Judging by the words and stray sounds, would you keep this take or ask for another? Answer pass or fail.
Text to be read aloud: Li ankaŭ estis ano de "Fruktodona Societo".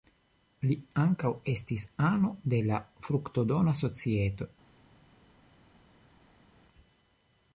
fail